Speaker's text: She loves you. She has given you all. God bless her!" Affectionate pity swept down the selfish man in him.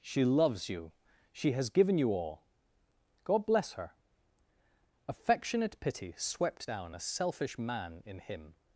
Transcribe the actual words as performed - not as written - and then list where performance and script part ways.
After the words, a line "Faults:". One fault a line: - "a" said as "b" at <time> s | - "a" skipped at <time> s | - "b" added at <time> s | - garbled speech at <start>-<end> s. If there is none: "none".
She loves you. She has given you all. God bless her!" Affectionate pity swept down a selfish man in him.
Faults:
- "the" said as "a" at 6.9 s